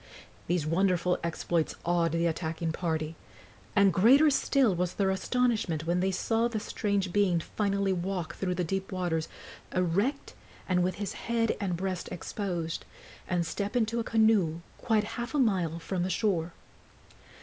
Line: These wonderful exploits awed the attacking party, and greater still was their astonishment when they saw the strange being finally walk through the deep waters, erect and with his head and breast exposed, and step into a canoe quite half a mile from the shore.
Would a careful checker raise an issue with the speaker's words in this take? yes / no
no